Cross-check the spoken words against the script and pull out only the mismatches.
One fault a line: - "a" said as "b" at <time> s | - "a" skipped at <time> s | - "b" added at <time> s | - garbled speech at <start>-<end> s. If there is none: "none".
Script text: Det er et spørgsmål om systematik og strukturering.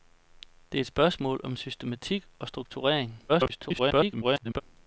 - garbled speech at 3.3-4.6 s